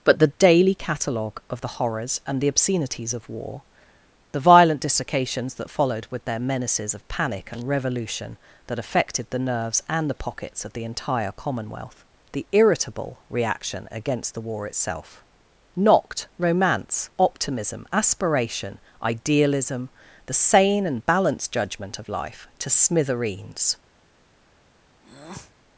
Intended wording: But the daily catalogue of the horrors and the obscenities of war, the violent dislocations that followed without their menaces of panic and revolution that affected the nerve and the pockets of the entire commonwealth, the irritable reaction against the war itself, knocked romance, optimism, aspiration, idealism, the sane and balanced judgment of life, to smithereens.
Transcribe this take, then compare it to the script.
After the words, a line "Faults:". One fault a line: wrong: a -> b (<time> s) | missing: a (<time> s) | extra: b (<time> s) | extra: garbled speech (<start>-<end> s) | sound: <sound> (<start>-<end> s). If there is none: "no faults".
But the daily catalogue of the horrors and the obscenities of war, the violent dislocations that followed with their menaces of panic and revolution that affected the nerves and the pockets of the entire commonwealth, the irritable reaction against the war itself, knocked romance, optimism, aspiration, idealism, the sane and balanced judgment of life, to smithereens.
Faults:
wrong: without -> with (6.1 s)
wrong: nerve -> nerves (9.4 s)
sound: breath (25.0-25.5 s)